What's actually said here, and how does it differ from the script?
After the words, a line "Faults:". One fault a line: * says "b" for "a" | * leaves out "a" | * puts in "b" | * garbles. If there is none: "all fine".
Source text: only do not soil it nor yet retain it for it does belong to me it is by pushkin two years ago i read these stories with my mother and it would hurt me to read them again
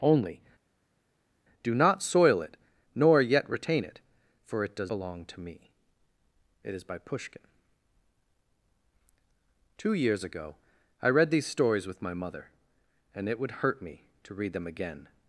only do not soil it nor yet retain it for it does belong to me it is by pushkin two years ago i read these stories with my mother and it would hurt me to read them again
Faults:
all fine